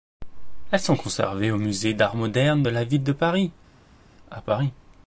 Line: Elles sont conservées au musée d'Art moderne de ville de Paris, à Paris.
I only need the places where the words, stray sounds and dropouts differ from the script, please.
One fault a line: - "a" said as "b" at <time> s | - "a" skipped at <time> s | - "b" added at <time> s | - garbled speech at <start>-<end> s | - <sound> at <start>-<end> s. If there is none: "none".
- "la" added at 2.7 s